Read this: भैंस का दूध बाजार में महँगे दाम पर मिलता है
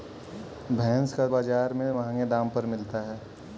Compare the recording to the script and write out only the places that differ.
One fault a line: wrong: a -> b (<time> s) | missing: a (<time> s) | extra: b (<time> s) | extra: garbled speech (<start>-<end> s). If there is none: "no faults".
missing: दूध (1.3 s)